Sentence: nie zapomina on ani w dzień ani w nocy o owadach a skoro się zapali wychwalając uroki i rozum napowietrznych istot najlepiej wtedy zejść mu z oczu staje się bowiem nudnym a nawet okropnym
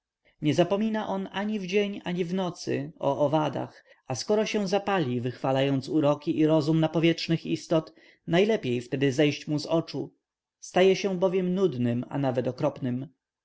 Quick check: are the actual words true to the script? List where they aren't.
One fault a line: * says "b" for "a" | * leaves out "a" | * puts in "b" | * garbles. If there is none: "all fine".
all fine